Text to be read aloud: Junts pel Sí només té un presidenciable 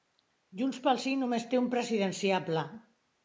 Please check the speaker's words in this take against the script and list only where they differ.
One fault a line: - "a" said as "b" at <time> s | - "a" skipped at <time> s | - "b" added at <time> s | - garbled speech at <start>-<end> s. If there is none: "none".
none